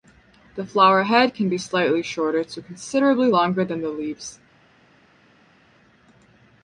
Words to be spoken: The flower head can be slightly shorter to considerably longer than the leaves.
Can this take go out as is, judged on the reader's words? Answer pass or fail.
pass